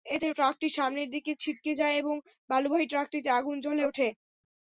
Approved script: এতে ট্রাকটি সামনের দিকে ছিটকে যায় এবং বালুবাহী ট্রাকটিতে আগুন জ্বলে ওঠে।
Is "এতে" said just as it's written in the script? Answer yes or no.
yes